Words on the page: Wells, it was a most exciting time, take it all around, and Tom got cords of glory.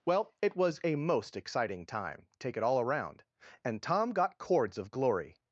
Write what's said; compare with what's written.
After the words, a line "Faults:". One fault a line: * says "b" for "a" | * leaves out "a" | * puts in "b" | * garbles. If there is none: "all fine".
Well, it was a most exciting time, take it all around, and Tom got cords of glory.
Faults:
* says "Well" for "Wells"